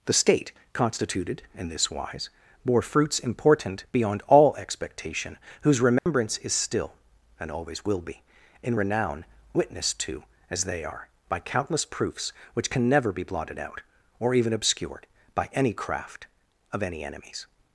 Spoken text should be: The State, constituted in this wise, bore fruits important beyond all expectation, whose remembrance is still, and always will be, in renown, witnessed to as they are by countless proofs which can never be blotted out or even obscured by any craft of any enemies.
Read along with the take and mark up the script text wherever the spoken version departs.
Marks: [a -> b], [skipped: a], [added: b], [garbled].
The State, constituted in this wise, bore fruits important beyond all expectation, whose remembrance is still, and always will be, in renown, witnessed to as they are by countless proofs which can never be blotted out or even obscured by any craft of any enemies.